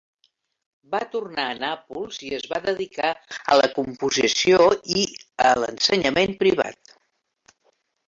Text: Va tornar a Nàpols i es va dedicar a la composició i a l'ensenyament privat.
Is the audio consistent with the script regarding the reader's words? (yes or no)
yes